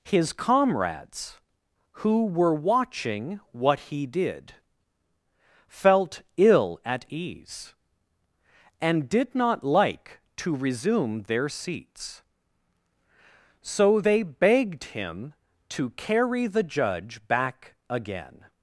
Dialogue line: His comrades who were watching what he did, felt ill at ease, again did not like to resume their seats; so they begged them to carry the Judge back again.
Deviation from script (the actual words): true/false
true